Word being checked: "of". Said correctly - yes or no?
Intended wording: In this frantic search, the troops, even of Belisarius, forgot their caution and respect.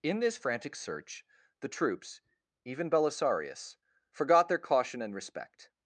no